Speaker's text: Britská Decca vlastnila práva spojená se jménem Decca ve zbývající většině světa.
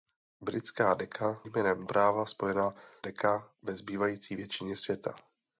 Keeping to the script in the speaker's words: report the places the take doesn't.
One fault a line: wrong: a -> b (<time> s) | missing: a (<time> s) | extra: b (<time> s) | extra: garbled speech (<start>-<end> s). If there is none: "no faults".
wrong: vlastnila -> jménem (1.4 s)
missing: se jménem (2.7 s)